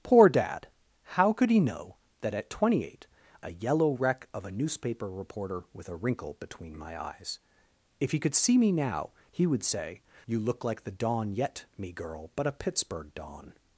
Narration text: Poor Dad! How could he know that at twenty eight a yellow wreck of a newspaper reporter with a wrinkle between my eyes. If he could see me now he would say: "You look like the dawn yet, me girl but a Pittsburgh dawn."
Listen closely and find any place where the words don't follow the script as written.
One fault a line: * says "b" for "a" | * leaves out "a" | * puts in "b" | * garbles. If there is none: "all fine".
all fine